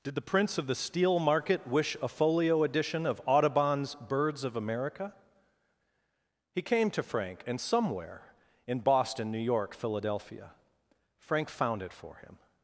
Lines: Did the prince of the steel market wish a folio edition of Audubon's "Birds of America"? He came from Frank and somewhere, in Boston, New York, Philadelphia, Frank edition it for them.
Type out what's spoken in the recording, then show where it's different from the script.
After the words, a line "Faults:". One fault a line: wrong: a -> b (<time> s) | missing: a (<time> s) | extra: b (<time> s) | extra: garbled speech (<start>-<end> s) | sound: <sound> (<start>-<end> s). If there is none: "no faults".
Did the prince of the steel market wish a folio edition of Audubon's "Birds of America"? He came to Frank and somewhere, in Boston, New York, Philadelphia, Frank found it for him.
Faults:
wrong: from -> to (6.9 s)
wrong: edition -> found (11.5 s)
wrong: them -> him (12.2 s)